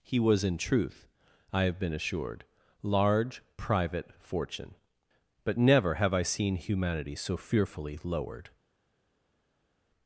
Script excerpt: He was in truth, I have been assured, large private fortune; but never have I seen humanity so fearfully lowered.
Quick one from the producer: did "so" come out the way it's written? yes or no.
yes